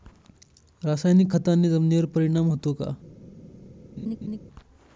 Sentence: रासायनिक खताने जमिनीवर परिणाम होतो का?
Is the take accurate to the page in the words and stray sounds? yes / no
no